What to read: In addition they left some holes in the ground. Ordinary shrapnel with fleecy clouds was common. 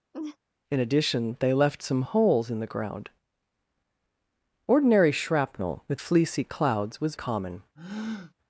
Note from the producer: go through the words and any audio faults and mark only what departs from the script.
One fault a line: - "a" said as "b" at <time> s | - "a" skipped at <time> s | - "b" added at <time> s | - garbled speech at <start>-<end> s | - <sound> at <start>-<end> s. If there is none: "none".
- laugh at 0.1-0.4 s
- breath at 7.8-8.3 s